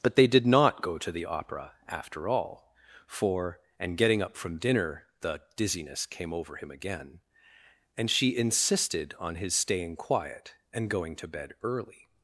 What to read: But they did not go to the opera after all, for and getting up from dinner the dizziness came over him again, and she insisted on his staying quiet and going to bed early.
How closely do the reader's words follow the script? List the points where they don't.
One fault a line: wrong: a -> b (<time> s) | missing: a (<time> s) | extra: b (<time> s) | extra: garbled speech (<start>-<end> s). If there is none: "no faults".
no faults